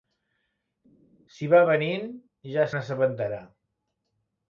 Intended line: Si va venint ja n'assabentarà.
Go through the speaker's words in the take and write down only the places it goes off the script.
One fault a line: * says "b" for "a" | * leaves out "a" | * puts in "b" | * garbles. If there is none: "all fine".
all fine